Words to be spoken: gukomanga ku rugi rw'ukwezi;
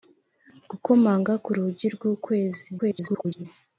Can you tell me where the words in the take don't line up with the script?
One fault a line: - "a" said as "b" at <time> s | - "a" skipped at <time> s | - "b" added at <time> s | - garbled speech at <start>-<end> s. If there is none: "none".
- garbled speech at 2.8-3.4 s